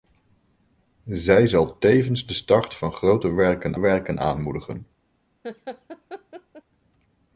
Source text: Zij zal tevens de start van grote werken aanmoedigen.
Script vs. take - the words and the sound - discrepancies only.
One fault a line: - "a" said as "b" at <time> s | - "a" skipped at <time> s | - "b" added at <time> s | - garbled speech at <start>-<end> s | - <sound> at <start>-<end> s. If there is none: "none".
- "werken" added at 3.8 s
- laugh at 5.4-6.6 s